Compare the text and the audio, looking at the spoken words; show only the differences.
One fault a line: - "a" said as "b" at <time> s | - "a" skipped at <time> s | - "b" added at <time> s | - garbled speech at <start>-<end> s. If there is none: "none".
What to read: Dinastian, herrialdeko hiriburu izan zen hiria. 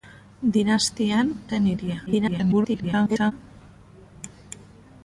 - "herrialdeko hiriburu izan" skipped at 1.3 s
- garbled speech at 2.1-3.3 s